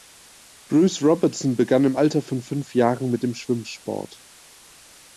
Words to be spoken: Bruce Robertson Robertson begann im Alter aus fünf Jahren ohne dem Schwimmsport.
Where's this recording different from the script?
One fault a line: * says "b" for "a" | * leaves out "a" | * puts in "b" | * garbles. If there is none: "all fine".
* leaves out "Robertson"
* says "von" for "aus"
* says "mit" for "ohne"